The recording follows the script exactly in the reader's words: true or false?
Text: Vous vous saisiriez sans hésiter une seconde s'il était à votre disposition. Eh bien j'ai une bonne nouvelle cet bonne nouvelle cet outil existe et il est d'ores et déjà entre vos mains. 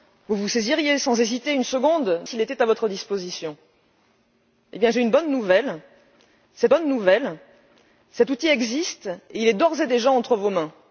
true